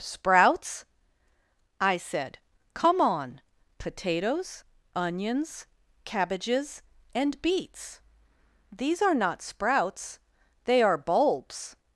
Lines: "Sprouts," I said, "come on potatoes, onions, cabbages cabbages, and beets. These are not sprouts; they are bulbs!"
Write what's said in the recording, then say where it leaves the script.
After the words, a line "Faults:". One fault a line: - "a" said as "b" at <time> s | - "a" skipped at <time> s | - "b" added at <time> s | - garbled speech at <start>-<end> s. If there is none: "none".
"Sprouts," I said, "come on potatoes, onions, cabbages, and beets. These are not sprouts; they are bulbs!"
Faults:
- "cabbages" skipped at 6.8 s